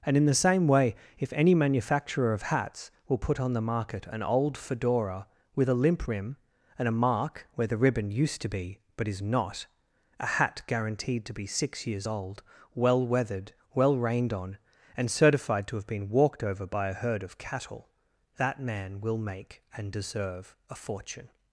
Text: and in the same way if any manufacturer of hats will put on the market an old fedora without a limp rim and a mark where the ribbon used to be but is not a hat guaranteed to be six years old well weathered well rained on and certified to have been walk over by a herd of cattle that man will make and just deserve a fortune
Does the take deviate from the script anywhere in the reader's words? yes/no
yes